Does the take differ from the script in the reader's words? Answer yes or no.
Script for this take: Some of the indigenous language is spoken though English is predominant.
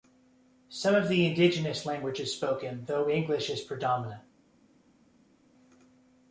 no